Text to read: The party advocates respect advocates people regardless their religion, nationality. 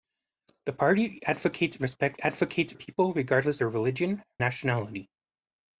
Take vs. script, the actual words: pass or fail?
pass